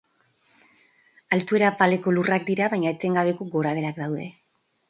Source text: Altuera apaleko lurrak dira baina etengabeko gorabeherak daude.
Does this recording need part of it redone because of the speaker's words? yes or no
no